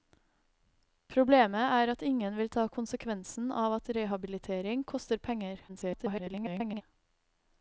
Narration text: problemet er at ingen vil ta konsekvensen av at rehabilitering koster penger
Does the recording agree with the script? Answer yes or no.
no